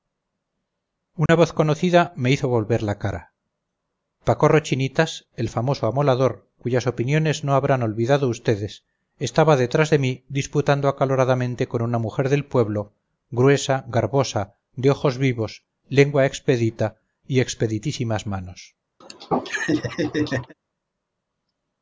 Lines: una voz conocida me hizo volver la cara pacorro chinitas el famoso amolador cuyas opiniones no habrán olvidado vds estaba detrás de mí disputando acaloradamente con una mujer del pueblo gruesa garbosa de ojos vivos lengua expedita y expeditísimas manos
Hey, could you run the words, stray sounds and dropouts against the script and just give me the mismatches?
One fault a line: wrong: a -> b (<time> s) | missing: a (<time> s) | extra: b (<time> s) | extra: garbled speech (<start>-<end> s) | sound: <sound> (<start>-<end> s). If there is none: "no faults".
sound: dropout (1.3-1.3 s)
sound: laugh (19.0-20.5 s)